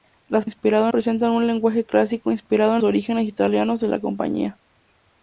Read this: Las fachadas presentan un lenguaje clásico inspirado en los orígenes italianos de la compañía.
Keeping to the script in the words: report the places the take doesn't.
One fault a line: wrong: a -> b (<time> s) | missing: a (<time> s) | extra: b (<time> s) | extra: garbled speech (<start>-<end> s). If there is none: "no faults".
wrong: fachadas -> inspirado (0.4 s)
missing: los (2.8 s)